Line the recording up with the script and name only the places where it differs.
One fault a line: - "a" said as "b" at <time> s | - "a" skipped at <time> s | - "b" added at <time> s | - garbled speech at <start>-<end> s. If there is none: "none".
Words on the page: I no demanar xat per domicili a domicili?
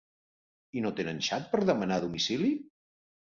- "demanar" said as "tenen" at 1.0 s
- "domicili" said as "demanar" at 1.7 s